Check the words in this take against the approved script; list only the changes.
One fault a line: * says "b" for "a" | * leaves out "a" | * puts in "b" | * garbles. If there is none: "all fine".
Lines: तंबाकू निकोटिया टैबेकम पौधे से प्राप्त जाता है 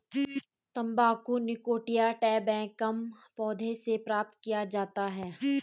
* puts in "किया"